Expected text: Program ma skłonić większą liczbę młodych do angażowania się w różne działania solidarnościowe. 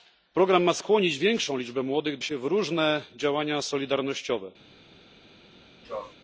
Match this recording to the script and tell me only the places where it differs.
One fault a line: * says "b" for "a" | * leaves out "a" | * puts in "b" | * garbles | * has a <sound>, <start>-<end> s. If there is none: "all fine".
* leaves out "do angażowania"
* has a sneeze, 5.8-6.1 s